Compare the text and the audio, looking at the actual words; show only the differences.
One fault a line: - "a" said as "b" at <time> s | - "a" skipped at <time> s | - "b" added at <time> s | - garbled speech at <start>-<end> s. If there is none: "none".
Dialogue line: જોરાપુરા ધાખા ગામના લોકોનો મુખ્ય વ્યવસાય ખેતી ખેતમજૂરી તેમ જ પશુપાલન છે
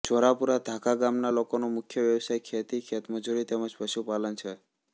none